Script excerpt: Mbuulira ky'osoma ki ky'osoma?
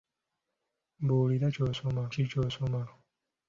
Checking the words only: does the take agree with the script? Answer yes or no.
yes